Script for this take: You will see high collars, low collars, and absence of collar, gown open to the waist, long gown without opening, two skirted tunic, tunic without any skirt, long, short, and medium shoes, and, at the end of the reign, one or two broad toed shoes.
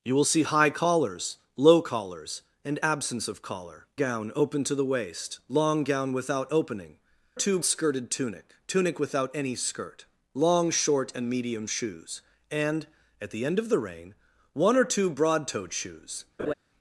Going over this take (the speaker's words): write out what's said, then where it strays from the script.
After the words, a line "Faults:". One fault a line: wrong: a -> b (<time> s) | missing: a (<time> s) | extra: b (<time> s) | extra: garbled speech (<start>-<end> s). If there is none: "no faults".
You will see high collars, low collars, and absence of collar, gown open to the waist, long gown without opening, two skirted tunic, tunic without any skirt, long, short, and medium shoes, and, at the end of the reign, one or two broad toed shoes.
Faults:
no faults